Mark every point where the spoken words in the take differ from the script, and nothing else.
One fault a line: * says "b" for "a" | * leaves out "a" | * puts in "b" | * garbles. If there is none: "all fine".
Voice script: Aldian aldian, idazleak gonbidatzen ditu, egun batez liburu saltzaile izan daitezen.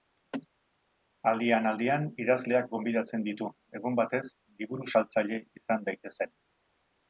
all fine